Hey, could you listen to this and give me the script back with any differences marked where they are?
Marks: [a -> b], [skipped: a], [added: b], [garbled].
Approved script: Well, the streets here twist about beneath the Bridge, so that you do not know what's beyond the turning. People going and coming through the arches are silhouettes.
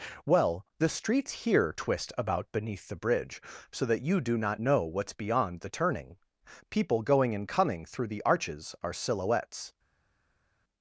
Well, the streets here twist about beneath the Bridge, so that you do not know what's beyond the turning. People going and coming through the arches are silhouettes.